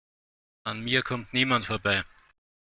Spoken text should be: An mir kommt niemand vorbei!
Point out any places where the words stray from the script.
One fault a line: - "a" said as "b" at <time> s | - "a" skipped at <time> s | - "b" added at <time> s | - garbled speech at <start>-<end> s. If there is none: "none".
none